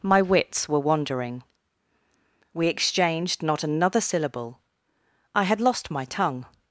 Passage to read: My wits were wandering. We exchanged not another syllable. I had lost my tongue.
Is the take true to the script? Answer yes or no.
yes